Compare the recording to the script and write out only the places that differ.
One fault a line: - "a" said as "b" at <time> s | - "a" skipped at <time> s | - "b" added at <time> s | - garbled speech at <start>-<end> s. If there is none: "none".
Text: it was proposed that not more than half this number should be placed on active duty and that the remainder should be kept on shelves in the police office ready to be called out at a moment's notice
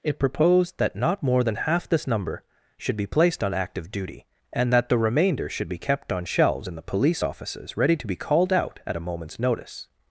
- "was" skipped at 0.2 s
- "office" said as "offices" at 7.2 s